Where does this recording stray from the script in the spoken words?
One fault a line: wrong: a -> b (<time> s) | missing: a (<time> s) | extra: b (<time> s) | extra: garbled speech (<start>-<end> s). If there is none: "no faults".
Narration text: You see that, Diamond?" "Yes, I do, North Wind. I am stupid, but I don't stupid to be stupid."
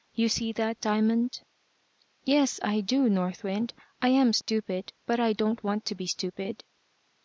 wrong: stupid -> want (5.6 s)